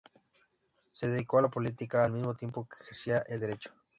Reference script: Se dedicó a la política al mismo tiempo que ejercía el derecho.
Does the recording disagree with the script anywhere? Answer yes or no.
no